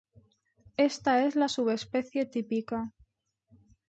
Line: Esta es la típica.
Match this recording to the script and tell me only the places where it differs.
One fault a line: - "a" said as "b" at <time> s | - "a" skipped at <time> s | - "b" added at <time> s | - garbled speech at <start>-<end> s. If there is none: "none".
- "subespecie" added at 1.5 s